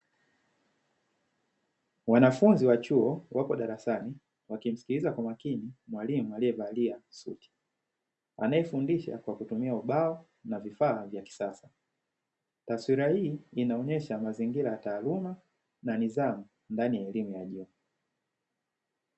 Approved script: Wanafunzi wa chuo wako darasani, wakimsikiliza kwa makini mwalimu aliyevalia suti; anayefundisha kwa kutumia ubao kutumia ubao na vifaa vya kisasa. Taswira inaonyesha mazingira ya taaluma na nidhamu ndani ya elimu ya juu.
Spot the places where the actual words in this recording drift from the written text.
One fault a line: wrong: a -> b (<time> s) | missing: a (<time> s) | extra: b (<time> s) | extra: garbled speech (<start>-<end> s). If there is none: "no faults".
missing: kutumia ubao (10.2 s)
extra: hii (13.1 s)